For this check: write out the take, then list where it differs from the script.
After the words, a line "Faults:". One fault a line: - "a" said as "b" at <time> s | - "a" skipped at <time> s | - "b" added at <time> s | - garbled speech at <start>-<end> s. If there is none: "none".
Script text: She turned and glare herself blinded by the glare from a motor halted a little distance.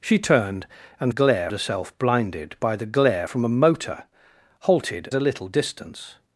She turned and glare herself blinded by the glare from a motor halted a little distance.
Faults:
none